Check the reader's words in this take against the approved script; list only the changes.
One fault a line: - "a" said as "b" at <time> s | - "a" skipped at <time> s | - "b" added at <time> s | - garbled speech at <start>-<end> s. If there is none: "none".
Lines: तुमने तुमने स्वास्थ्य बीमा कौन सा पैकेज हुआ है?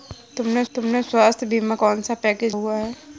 none